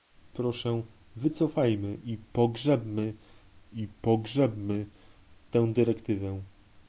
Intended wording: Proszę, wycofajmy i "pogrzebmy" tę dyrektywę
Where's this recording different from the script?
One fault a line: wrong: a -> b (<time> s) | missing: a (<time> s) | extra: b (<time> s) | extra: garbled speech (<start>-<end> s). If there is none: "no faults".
extra: i pogrzebmy (3.7 s)